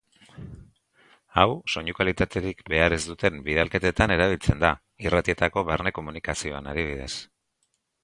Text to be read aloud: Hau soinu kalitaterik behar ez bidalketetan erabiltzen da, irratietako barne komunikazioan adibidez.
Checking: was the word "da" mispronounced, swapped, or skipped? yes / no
no